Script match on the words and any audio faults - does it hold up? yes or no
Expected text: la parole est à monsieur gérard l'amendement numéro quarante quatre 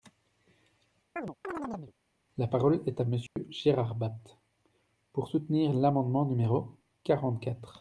no